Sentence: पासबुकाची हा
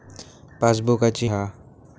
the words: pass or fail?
pass